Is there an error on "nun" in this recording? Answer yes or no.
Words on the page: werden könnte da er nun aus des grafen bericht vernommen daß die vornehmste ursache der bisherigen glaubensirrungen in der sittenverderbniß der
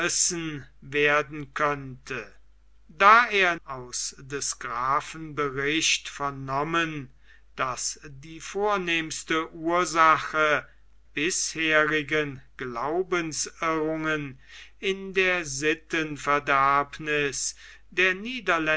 yes